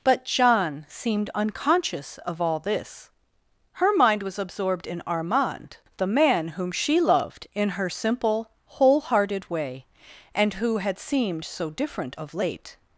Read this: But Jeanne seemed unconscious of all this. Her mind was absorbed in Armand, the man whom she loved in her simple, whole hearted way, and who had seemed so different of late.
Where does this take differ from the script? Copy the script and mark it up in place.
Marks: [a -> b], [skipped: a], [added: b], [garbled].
But Jeanne seemed unconscious of all this. Her mind was absorbed in Armand, the man whom she loved in her simple, whole hearted way, and who had seemed so different of late.